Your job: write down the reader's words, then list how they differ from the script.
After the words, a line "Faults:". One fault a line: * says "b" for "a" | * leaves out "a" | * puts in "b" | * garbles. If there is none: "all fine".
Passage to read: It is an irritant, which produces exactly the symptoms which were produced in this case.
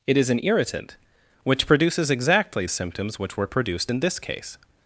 It is an irritant, which produces exactly symptoms which were produced in this case.
Faults:
* leaves out "the"